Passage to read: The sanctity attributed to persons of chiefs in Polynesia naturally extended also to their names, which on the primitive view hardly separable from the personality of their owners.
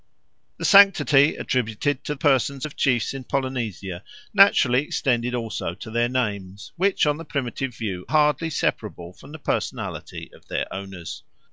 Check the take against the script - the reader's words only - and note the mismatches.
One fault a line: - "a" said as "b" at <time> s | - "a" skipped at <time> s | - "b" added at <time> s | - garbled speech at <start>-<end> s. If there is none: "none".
none